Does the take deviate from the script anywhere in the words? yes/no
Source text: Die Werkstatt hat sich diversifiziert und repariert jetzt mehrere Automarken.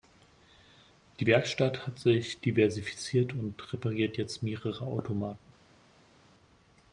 no